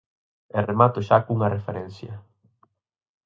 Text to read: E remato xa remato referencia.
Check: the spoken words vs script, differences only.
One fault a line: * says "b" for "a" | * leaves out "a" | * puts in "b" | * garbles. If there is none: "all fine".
* says "cunha" for "remato"